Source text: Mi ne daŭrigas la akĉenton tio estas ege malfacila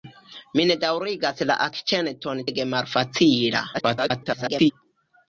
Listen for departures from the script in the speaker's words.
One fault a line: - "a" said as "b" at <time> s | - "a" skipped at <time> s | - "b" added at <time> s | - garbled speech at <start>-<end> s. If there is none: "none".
- "tio estas" skipped at 2.4 s
- garbled speech at 3.7-4.7 s